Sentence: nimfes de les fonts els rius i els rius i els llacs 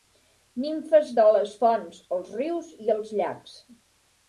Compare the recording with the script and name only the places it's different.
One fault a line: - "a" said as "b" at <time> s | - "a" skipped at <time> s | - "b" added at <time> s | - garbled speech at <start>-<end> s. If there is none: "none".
- "rius i els" skipped at 3.2 s